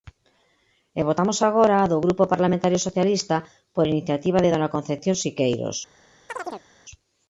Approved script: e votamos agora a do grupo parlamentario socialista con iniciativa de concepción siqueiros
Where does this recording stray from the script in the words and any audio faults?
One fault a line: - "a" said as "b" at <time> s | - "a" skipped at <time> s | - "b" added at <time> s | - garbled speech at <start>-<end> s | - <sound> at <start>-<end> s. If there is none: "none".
- "con" said as "por" at 3.8 s
- "dona" added at 4.5 s
- chirp at 6.3-6.7 s